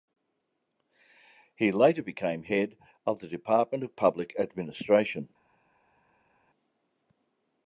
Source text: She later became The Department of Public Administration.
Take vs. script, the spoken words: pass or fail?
fail